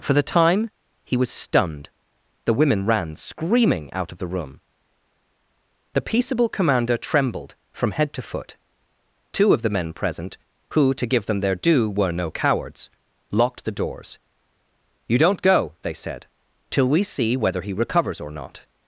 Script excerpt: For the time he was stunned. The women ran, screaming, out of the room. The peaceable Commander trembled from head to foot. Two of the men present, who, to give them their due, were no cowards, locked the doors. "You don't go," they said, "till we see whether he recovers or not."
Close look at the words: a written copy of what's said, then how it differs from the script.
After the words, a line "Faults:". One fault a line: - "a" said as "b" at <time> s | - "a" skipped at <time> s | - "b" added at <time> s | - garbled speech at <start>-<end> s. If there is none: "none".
For the time he was stunned. The women ran, screaming, out of the room. The peaceable Commander trembled from head to foot. Two of the men present, who, to give them their due, were no cowards, locked the doors. "You don't go," they said, "till we see whether he recovers or not."
Faults:
none